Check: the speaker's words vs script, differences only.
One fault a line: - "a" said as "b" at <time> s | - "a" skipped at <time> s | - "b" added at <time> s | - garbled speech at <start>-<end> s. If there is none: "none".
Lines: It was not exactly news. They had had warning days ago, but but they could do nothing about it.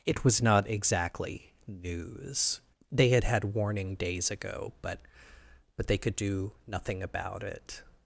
none